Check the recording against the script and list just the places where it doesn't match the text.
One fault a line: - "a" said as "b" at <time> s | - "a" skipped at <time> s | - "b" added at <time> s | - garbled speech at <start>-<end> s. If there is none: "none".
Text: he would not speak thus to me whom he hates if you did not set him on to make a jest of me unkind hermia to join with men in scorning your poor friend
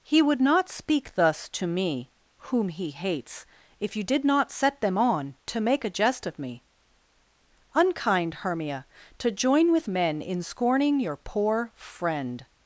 - "him" said as "them" at 4.8 s